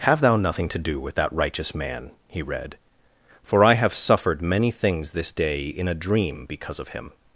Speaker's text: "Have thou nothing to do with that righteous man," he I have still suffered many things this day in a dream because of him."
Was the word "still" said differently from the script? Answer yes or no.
yes